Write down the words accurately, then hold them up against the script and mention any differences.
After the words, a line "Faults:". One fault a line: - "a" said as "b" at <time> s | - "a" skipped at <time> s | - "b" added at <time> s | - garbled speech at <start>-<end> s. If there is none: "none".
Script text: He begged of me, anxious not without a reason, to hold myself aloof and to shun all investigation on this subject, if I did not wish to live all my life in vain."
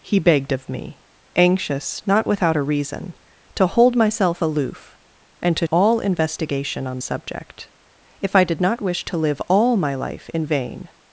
He begged of me, anxious not without a reason, to hold myself aloof and to all investigation on subject, if I did not wish to live all my life in vain."
Faults:
- "shun" skipped at 5.7 s
- "this" skipped at 7.0 s